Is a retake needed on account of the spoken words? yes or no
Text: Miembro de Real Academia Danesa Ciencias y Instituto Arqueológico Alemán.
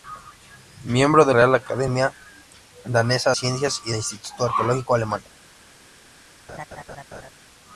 no